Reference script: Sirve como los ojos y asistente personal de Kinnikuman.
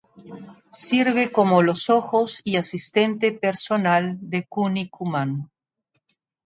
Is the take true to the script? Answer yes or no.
yes